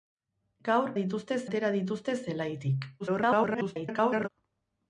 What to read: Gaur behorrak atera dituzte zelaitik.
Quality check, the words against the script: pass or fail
fail